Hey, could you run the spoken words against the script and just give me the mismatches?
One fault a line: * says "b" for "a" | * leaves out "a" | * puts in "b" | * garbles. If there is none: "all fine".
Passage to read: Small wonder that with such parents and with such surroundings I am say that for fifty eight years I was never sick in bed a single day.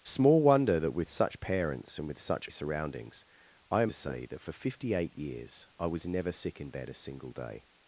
all fine